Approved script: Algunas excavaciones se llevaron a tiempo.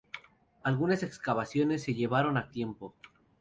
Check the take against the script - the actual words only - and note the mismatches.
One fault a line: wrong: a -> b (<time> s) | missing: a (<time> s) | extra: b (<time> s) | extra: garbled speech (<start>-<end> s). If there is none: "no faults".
no faults